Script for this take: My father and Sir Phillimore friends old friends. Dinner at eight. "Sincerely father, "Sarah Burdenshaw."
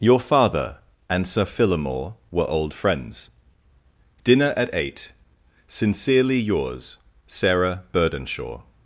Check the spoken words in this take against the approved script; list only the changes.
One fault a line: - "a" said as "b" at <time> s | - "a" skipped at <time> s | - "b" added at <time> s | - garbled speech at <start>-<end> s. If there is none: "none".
- "My" said as "Your" at 0.0 s
- "friends" said as "were" at 2.3 s
- "father" said as "yours" at 6.4 s